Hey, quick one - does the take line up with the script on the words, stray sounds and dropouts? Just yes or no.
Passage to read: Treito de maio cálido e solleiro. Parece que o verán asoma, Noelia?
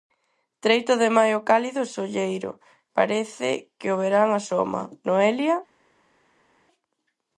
yes